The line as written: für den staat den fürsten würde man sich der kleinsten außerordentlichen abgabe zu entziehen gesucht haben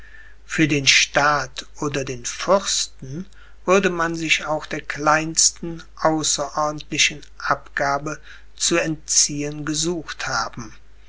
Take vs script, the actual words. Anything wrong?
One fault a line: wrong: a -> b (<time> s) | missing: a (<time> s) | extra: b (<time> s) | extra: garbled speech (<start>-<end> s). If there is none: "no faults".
extra: oder (1.8 s)
extra: auch (4.4 s)